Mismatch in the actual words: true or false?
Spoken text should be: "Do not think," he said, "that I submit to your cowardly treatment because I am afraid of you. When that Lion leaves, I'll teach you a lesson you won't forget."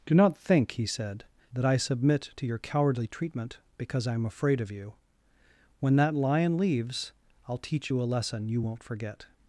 false